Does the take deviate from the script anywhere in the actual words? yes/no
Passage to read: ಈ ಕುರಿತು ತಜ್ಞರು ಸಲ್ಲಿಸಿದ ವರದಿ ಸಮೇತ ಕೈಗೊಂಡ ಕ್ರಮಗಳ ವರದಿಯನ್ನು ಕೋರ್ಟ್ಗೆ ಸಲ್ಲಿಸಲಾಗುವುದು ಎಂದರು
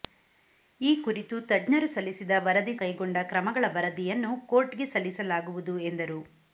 yes